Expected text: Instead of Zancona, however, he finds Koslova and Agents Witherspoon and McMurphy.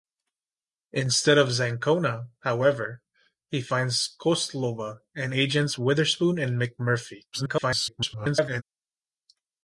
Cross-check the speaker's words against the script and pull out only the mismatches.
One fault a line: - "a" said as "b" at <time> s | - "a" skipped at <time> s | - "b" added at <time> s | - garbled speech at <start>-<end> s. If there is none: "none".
- garbled speech at 7.3-8.6 s